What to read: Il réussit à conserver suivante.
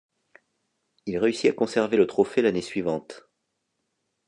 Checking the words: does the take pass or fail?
fail